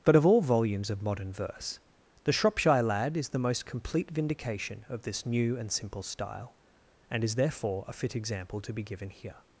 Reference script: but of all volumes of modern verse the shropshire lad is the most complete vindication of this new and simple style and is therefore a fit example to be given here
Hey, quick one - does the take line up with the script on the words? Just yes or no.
yes